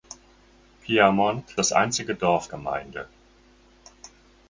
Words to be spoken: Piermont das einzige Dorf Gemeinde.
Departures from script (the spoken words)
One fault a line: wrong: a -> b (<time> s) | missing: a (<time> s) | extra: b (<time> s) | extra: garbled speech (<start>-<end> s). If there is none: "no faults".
no faults